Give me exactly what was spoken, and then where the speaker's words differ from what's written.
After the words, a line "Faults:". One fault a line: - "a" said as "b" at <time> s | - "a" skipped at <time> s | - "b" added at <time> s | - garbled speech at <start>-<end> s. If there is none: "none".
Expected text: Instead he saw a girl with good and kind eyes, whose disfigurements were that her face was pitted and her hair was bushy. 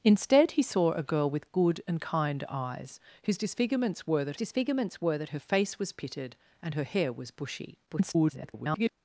Instead he saw a girl with good and kind eyes, whose disfigurements were that disfigurements were that her face was pitted and her hair was bushy. [garbled]
Faults:
- "disfigurements were that" added at 4.4 s
- garbled speech at 7.9-8.9 s